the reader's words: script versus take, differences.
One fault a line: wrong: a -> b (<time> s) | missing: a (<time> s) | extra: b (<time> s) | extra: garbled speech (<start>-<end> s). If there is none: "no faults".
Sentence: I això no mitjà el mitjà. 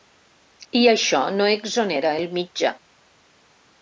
wrong: mitjà -> exonera (1.6 s)